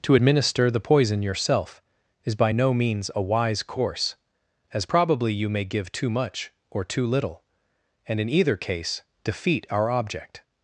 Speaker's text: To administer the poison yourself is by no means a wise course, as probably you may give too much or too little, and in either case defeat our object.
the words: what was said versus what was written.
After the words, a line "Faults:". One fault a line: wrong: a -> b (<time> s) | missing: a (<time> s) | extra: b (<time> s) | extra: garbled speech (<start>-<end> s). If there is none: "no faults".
To administer the poison yourself is by no means a wise course, as probably you may give too much or too little, and in either case defeat our object.
Faults:
no faults